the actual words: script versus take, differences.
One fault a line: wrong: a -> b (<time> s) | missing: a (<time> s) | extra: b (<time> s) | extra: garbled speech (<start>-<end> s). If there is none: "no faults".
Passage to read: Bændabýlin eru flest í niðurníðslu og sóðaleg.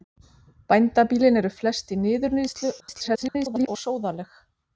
extra: garbled speech (2.8-3.7 s)